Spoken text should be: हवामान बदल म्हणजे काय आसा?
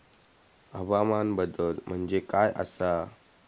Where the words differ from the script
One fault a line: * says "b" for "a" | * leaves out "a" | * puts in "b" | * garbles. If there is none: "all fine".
all fine